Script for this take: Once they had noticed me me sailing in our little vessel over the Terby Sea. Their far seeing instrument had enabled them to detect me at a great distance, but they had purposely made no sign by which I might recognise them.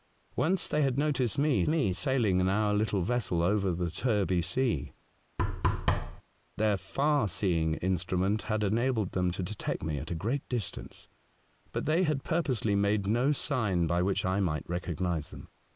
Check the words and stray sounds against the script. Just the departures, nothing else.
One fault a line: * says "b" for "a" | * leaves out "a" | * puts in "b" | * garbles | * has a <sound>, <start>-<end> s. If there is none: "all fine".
* has a thud, 5.4-6.2 s